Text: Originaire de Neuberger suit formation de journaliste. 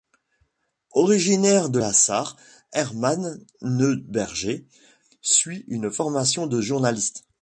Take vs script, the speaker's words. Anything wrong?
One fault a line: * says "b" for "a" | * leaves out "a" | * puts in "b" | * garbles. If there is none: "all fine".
* puts in "la Sarre Hermann"
* puts in "une"